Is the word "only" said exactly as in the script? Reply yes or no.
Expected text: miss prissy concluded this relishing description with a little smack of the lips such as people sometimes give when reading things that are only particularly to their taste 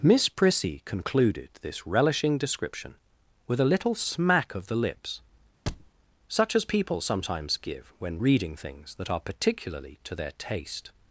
no